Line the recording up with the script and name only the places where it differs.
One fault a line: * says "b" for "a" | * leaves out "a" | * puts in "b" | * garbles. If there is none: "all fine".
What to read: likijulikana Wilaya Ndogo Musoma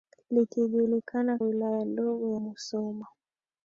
all fine